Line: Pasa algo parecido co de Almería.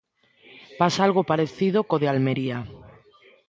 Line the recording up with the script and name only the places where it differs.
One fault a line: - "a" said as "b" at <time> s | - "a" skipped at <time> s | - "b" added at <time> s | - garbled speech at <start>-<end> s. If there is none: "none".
none